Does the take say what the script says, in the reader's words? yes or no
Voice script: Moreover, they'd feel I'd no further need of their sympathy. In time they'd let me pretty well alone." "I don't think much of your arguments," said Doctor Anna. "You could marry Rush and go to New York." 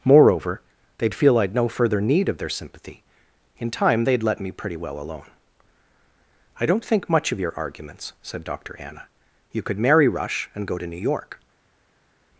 yes